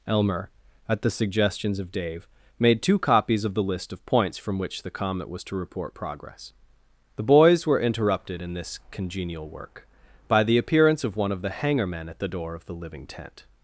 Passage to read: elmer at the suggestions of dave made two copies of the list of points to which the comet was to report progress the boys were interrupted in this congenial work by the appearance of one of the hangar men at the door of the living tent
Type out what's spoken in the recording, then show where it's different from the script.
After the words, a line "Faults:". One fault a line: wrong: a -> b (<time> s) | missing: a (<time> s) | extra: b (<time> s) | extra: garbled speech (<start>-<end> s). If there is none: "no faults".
elmer at the suggestions of dave made two copies of the list of points from which the comet was to report progress the boys were interrupted in this congenial work by the appearance of one of the hangar men at the door of the living tent
Faults:
wrong: to -> from (4.4 s)